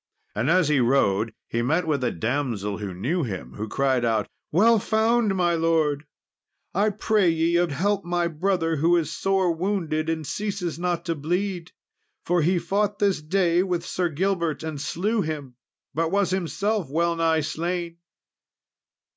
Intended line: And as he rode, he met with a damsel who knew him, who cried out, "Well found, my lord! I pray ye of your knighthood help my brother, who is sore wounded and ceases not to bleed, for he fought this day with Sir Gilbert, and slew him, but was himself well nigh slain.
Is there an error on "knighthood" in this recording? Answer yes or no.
yes